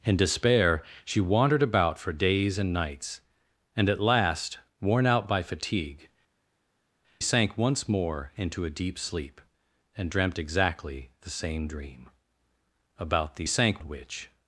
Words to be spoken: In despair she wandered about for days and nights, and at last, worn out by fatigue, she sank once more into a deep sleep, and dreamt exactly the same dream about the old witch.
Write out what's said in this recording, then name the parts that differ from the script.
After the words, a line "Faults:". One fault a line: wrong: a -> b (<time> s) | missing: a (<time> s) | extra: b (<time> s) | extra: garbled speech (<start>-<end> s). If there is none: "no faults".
In despair she wandered about for days and nights, and at last, worn out by fatigue, sank once more into a deep sleep, and dreamt exactly the same dream about the sank witch.
Faults:
missing: she (6.1 s)
wrong: old -> sank (13.5 s)